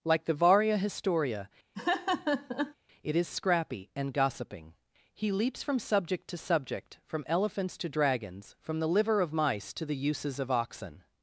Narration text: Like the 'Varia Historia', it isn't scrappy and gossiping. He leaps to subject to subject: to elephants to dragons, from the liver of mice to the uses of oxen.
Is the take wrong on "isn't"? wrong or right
wrong